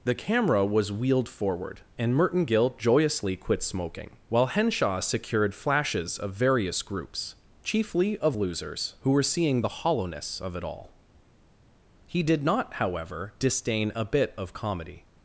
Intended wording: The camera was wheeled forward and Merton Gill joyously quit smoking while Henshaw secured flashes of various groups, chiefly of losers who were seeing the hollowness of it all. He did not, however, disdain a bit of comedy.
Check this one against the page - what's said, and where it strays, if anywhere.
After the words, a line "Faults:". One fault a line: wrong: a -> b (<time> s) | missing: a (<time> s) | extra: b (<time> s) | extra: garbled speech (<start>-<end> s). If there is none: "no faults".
The camera was wheeled forward and Merton Gill joyously quit smoking while Henshaw secured flashes of various groups, chiefly of losers who were seeing the hollowness of it all. He did not, however, disdain a bit of comedy.
Faults:
no faults